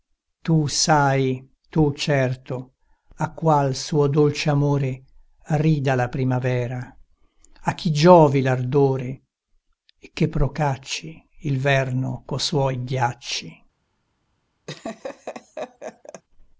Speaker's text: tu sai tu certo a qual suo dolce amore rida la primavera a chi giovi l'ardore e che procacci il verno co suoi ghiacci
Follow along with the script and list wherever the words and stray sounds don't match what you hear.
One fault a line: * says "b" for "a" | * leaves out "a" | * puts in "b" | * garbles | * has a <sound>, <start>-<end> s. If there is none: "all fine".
* has a laugh, 14.7-16.2 s